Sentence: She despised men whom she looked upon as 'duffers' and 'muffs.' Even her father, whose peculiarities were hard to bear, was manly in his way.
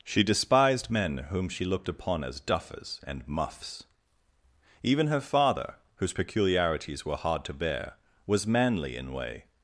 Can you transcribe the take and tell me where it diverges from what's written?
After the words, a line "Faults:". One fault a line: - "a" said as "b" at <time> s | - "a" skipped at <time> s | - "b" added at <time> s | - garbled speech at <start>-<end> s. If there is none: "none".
She despised men whom she looked upon as 'duffers' and 'muffs.' Even her father, whose peculiarities were hard to bear, was manly in way.
Faults:
- "his" skipped at 9.1 s